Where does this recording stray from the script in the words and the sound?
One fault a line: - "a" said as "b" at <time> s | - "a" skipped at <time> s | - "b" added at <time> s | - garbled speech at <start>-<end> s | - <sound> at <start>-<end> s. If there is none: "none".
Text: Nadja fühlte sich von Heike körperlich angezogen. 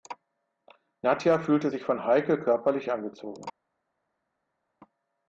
none